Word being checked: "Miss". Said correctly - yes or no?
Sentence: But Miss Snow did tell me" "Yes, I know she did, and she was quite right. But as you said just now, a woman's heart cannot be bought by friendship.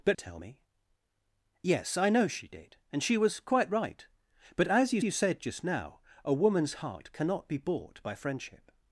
no